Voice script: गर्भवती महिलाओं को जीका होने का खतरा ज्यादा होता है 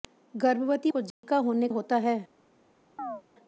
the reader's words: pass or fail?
fail